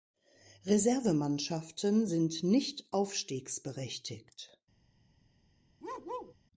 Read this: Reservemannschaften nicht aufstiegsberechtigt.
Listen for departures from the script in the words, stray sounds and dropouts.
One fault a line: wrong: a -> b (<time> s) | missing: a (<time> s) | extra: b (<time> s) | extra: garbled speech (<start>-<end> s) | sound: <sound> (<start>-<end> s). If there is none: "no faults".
extra: sind (2.0 s)
sound: bark (5.8-6.4 s)